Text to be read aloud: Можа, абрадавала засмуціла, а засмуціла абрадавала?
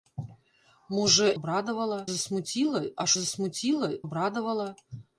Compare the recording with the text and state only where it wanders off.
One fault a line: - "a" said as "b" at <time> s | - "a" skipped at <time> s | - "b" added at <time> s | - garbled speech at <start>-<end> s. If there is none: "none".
none